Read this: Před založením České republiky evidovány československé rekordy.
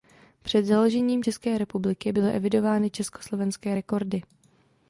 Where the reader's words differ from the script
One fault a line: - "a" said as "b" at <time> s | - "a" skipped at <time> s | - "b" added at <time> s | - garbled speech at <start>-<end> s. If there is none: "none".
- "byly" added at 2.1 s